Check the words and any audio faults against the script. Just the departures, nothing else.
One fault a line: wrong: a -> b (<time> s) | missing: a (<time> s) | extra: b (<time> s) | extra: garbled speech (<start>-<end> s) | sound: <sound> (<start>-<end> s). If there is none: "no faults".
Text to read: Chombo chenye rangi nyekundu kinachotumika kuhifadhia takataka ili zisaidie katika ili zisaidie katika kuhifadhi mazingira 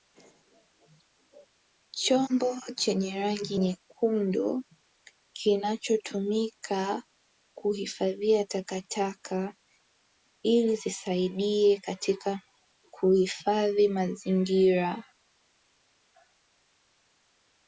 missing: ili zisaidie katika (12.4 s)